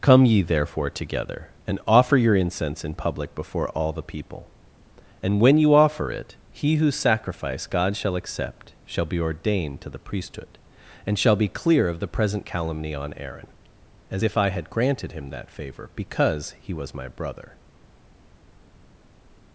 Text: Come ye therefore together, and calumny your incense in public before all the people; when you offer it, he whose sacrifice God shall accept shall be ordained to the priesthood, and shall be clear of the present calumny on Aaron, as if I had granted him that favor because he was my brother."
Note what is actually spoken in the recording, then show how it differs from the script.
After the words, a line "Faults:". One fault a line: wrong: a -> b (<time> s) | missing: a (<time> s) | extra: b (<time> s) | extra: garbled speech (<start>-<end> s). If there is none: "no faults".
Come ye therefore together, and offer your incense in public before all the people; and when you offer it, he whose sacrifice God shall accept shall be ordained to the priesthood, and shall be clear of the present calumny on Aaron, as if I had granted him that favor because he was my brother."
Faults:
wrong: calumny -> offer (1.9 s)
extra: and (5.2 s)